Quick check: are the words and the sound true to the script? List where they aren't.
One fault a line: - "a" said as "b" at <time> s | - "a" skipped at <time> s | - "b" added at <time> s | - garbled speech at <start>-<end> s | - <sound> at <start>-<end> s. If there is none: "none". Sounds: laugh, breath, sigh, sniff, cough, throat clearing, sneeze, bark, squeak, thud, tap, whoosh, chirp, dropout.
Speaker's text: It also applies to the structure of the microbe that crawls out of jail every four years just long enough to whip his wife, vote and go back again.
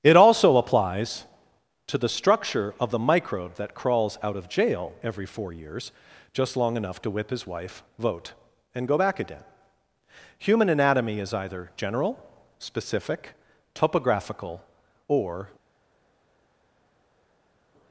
- "Human anatomy is either general specific topographical or" added at 10.4 s